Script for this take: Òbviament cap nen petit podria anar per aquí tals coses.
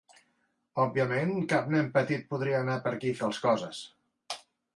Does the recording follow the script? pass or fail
pass